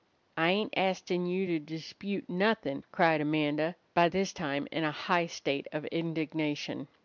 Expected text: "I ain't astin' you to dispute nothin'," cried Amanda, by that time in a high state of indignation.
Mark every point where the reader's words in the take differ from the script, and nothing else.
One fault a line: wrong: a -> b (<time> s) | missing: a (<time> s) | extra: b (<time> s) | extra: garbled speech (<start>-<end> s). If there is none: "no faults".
wrong: that -> this (4.0 s)